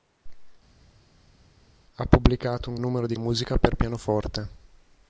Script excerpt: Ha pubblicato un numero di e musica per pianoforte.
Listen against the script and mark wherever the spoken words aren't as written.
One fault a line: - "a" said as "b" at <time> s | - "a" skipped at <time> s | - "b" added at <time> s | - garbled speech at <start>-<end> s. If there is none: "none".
none